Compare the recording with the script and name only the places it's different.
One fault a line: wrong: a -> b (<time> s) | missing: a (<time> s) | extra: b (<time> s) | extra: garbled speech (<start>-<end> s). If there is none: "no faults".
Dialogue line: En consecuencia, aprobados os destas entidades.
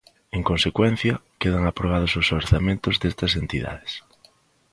extra: quedan (1.4 s)
extra: orzamentos (2.4 s)